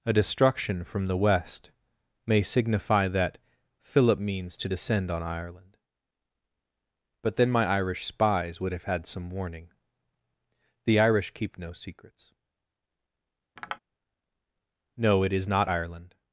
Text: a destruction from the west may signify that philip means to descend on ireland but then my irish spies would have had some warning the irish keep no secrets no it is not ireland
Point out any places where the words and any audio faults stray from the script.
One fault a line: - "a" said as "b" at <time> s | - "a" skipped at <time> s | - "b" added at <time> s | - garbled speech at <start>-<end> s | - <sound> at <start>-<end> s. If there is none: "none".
- tap at 13.6-13.8 s